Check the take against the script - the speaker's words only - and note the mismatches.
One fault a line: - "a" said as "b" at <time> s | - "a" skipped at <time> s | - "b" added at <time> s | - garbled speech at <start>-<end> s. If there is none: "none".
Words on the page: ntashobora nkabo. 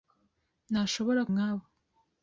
none